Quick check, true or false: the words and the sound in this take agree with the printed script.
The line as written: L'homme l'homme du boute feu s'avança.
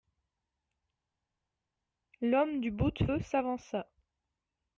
false